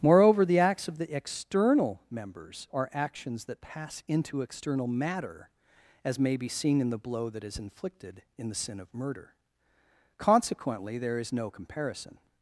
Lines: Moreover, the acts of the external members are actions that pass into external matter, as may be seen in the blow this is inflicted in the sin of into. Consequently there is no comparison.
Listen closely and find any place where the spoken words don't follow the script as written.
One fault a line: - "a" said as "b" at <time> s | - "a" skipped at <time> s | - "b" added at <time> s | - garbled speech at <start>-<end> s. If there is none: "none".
- "this" said as "that" at 7.3 s
- "into" said as "murder" at 8.9 s